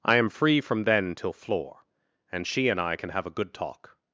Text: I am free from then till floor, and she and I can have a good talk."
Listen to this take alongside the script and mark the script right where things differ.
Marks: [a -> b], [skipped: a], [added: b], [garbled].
I am free from then till floor, and she and I can have a good talk."